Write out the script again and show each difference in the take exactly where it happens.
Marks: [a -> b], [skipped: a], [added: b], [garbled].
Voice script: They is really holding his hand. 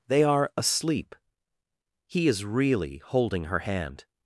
They [added: are asleep He] is really holding [his -> her] hand.